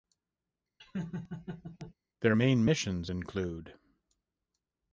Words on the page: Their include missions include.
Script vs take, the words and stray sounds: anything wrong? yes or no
yes